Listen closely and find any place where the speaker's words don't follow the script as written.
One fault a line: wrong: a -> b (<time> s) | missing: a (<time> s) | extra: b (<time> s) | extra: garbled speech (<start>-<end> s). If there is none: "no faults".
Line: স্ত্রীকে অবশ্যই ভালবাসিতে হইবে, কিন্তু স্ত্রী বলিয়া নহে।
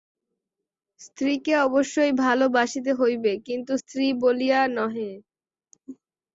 no faults